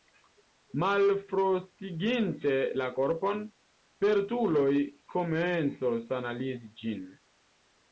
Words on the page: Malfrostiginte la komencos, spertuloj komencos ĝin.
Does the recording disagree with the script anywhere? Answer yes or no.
yes